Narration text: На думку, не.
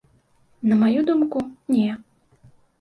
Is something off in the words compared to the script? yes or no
yes